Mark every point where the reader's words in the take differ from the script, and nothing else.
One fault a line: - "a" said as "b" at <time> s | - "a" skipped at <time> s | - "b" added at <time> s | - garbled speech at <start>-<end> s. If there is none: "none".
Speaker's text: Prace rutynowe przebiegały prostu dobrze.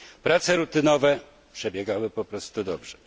- "po" added at 2.1 s